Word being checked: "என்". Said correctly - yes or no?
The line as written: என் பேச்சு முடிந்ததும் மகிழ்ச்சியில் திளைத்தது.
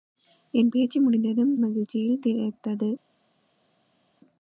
yes